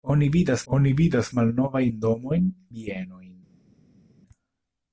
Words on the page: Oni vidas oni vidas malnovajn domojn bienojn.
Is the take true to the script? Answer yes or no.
yes